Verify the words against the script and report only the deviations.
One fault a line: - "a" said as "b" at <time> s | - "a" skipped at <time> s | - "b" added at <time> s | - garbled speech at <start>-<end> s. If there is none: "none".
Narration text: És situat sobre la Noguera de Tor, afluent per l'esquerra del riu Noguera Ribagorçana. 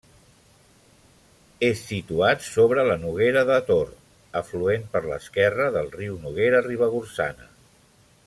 none